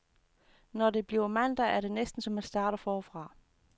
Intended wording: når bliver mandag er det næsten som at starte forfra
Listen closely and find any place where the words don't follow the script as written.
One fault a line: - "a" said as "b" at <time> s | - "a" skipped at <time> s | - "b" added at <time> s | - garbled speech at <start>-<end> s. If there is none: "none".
- "det" added at 0.9 s